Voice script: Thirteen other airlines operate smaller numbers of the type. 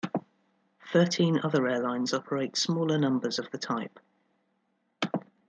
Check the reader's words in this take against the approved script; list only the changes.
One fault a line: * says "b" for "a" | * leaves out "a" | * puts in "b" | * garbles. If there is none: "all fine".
all fine